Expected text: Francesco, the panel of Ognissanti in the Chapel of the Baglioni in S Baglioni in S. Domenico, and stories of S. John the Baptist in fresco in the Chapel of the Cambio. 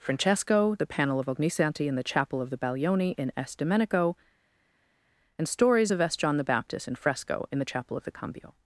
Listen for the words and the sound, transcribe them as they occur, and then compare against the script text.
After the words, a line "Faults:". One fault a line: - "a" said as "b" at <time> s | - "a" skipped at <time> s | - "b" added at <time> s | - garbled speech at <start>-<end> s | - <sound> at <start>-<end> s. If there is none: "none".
Francesco, the panel of Ognissanti in the Chapel of the Baglioni in S. Domenico, and stories of S. John the Baptist in fresco in the Chapel of the Cambio.
Faults:
- "Baglioni in S" skipped at 3.5 s